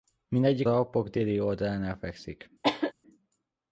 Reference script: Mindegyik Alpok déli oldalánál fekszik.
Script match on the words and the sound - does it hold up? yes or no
no